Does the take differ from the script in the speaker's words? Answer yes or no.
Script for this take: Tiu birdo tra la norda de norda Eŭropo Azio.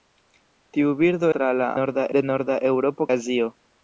no